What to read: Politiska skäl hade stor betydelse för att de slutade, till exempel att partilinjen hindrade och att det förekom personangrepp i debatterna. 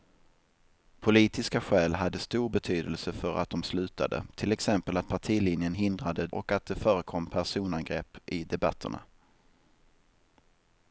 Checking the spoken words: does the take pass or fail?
pass